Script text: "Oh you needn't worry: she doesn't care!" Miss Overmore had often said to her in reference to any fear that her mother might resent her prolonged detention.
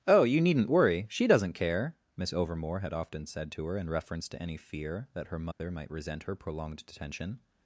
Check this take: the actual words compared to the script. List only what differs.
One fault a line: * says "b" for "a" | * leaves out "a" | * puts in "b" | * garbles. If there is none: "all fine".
all fine